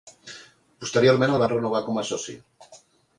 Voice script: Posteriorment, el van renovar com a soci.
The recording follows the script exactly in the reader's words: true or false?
true